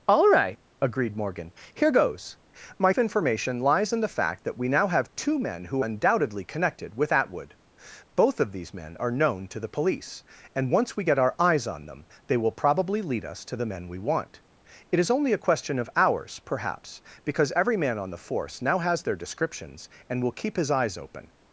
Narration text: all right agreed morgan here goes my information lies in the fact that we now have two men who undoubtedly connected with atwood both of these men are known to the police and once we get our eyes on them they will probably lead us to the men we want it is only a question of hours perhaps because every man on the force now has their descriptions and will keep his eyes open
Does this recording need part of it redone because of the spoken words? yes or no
no